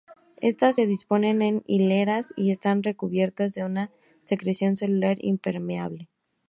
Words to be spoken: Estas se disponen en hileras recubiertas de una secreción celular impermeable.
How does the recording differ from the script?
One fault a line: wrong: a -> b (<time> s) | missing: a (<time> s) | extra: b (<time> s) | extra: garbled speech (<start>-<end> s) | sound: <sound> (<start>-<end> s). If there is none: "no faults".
extra: y están (2.4 s)